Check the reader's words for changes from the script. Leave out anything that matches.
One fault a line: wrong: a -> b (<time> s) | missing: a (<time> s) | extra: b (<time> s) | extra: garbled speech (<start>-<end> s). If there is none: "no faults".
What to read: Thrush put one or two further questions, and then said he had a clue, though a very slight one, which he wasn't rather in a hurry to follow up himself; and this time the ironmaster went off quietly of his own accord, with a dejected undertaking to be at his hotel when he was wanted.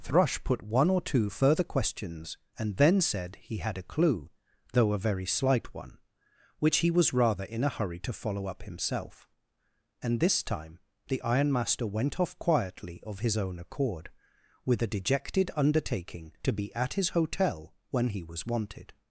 wrong: wasn't -> was (6.9 s)